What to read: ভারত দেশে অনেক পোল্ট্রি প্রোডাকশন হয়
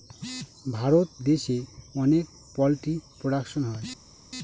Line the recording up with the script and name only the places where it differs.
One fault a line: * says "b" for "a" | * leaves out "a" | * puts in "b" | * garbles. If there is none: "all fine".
all fine